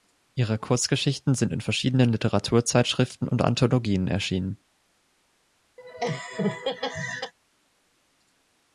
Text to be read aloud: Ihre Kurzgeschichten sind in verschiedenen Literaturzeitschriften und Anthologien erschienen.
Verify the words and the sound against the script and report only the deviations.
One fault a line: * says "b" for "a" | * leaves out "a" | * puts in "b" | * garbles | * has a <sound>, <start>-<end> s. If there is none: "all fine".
* has a laugh, 5.8-7.3 s